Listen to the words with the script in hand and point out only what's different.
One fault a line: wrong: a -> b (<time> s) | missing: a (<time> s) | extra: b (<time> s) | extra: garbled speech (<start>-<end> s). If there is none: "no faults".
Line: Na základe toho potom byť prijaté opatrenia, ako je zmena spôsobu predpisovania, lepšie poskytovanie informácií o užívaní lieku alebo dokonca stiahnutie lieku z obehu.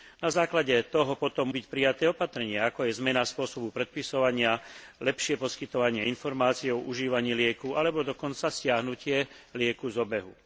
no faults